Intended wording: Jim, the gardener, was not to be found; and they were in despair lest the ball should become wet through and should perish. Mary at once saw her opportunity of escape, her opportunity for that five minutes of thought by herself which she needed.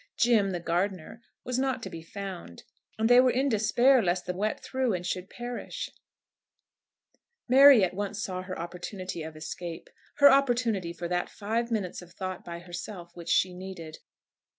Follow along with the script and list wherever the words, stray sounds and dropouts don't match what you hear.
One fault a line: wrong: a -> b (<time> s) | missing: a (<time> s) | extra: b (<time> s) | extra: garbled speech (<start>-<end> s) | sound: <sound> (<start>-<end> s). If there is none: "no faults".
missing: ball should become (4.3 s)